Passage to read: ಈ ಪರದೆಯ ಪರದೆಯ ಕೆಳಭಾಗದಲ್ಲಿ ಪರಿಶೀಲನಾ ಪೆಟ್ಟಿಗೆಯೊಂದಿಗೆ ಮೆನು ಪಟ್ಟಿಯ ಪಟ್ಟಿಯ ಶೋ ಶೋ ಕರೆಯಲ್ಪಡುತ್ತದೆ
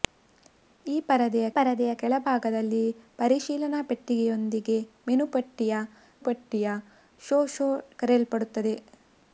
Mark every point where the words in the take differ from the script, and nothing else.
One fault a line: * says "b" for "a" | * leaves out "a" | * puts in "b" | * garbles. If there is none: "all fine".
all fine